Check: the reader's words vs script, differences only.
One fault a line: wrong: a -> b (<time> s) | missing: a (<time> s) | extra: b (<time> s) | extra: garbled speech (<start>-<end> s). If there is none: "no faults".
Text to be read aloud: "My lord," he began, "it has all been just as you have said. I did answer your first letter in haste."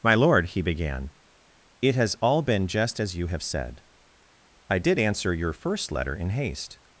no faults